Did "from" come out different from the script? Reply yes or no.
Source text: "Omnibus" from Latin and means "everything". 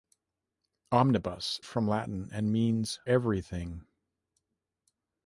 no